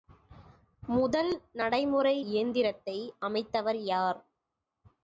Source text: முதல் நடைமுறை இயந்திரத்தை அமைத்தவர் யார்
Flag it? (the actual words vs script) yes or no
no